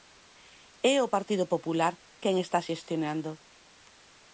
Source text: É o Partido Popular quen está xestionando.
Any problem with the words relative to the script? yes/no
no